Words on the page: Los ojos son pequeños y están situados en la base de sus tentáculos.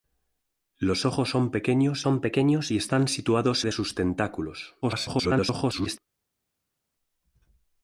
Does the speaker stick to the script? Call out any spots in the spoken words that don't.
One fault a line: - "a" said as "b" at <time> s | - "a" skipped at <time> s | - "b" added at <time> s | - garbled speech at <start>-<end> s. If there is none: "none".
- "son pequeños" added at 2.0 s
- "en la base" skipped at 3.7 s
- garbled speech at 4.8-6.0 s